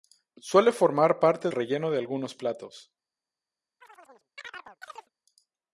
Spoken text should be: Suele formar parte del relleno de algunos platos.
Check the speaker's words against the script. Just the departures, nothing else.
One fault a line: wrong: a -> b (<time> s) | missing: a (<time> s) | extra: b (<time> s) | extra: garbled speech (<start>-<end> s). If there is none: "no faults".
missing: del (1.5 s)